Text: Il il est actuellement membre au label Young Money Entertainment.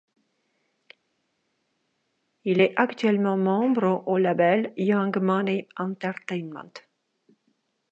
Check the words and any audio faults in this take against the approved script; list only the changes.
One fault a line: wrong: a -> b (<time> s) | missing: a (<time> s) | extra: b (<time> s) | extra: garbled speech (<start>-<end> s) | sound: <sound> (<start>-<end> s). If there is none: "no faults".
missing: il (2.6 s)